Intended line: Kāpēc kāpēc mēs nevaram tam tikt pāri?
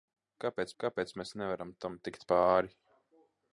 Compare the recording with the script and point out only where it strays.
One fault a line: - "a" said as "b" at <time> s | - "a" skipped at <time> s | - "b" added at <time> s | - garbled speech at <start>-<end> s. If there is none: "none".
none